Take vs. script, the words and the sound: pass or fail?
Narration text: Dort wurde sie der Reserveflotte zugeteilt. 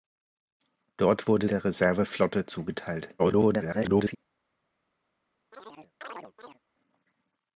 fail